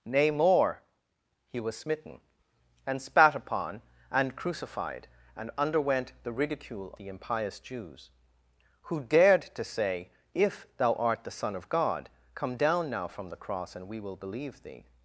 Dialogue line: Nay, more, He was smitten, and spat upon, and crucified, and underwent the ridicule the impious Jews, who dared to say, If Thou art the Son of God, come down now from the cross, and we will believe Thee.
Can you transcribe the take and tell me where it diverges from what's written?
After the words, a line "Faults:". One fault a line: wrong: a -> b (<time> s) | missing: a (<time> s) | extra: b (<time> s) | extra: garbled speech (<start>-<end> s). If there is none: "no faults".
Nay, more, He was smitten, and spat upon, and crucified, and underwent the ridicule the impious Jews, who dared to say, If Thou art the Son of God, come down now from the cross, and we will believe Thee.
Faults:
no faults